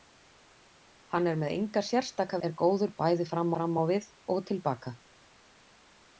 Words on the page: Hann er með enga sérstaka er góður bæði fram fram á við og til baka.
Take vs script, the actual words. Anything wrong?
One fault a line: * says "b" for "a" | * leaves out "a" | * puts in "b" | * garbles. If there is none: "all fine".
all fine